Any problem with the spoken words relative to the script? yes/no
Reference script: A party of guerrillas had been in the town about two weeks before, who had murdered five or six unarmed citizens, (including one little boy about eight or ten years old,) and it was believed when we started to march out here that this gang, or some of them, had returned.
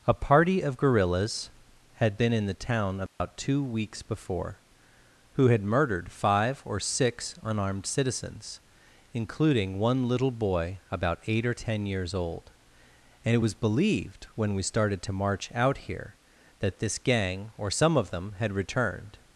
no